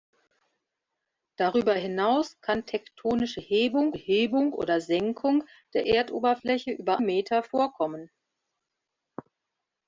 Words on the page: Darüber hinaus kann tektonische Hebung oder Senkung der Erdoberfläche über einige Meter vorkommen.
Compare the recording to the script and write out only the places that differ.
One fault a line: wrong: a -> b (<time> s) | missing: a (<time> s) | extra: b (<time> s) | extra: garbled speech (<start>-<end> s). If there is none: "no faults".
extra: Hebung (4.0 s)
missing: einige (7.0 s)